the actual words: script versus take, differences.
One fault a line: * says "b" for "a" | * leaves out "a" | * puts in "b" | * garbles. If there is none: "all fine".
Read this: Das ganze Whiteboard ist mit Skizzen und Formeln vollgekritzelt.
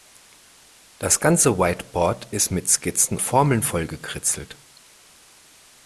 * leaves out "und"